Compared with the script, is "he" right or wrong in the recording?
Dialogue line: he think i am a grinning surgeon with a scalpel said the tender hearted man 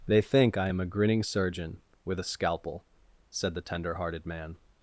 wrong